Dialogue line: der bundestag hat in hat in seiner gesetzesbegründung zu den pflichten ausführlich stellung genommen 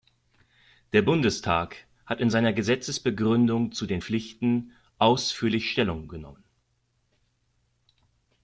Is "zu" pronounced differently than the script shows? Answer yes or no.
no